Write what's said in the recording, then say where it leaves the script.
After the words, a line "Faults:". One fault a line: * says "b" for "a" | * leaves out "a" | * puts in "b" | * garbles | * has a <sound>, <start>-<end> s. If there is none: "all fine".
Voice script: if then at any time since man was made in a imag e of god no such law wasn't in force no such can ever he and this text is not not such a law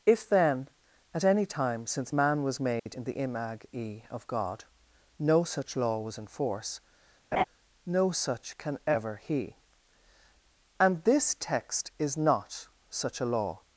if then at any time since man was made in the imag e of god no such law was in force no such can ever he and this text is not such a law
Faults:
* has a dropout, 2.8-2.9 s
* says "the" for "a"
* says "was" for "wasn't"
* has a laugh, 7.3-7.4 s
* leaves out "not"